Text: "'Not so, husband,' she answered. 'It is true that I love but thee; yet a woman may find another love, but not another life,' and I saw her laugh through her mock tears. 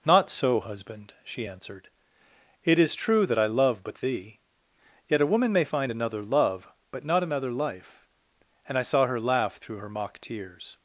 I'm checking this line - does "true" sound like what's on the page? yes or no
yes